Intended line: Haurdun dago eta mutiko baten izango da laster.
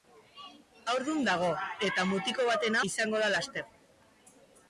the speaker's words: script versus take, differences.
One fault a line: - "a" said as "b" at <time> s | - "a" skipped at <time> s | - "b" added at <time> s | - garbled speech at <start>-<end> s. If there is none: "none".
none